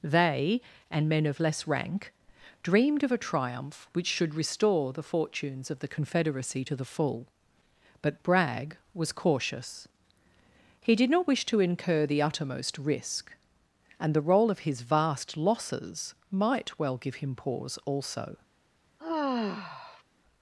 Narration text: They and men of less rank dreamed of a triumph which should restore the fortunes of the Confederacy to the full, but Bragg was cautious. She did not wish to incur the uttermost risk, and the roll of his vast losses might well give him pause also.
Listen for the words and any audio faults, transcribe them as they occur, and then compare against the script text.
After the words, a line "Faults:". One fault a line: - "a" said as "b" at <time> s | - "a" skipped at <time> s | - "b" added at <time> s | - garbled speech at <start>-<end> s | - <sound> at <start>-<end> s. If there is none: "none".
They and men of less rank dreamed of a triumph which should restore the fortunes of the Confederacy to the full, but Bragg was cautious. He did not wish to incur the uttermost risk, and the roll of his vast losses might well give him pause also.
Faults:
- "She" said as "He" at 10.8 s
- sigh at 19.0-20.0 s